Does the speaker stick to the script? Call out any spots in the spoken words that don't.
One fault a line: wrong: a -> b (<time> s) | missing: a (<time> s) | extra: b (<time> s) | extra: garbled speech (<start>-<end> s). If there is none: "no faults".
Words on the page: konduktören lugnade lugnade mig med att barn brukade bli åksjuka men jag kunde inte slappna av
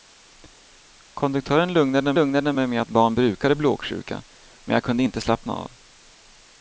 no faults